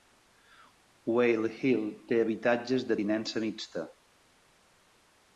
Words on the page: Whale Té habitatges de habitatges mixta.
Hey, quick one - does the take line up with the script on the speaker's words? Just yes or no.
no